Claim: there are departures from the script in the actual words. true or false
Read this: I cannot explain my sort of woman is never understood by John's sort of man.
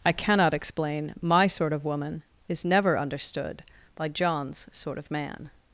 false